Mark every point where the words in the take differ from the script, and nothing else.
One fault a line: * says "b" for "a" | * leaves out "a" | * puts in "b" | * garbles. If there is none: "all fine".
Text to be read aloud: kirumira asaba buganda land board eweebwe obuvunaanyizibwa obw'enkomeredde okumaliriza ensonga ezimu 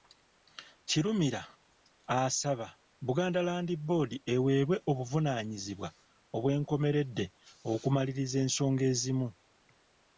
all fine